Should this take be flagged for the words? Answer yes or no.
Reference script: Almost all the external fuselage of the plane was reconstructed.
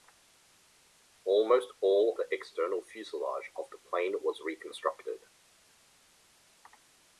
no